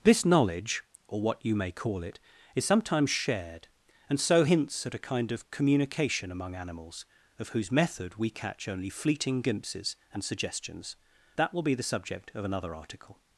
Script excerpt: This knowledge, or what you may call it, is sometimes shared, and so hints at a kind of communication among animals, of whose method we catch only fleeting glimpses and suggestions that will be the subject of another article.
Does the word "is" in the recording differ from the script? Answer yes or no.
no